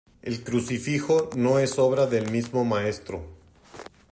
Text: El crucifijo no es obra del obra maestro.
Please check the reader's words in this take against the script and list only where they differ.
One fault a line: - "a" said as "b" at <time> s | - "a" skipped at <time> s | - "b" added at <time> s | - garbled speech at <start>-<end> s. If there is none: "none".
- "obra" said as "mismo" at 2.3 s